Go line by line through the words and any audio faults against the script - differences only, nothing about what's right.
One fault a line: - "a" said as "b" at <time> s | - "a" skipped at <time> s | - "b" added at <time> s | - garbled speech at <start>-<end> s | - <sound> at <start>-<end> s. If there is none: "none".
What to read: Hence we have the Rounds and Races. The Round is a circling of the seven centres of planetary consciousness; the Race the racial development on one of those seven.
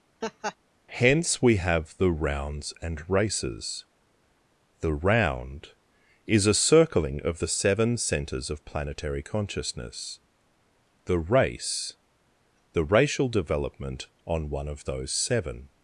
- laugh at 0.2-0.6 s